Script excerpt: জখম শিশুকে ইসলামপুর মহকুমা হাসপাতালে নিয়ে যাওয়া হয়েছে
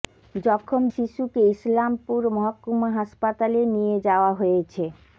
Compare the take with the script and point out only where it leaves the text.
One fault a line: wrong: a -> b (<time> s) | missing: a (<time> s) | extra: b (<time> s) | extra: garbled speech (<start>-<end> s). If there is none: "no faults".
no faults